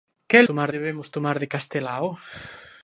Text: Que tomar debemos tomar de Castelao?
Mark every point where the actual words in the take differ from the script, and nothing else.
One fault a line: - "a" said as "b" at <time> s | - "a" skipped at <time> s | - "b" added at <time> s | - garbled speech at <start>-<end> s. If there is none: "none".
none